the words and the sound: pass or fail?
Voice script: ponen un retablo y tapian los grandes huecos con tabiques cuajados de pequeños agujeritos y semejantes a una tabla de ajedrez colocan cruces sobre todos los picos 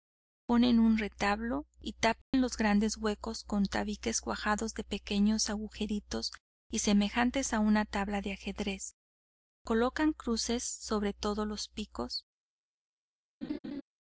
fail